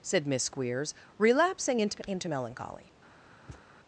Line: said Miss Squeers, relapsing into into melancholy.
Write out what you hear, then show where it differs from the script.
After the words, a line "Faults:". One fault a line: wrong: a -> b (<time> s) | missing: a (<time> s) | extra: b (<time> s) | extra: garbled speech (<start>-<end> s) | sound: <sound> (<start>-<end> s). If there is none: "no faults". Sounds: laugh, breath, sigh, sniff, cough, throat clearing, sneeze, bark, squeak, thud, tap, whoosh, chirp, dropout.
said Miss Squeers, relapsing into into melancholy.
Faults:
sound: thud (3.5-3.7 s)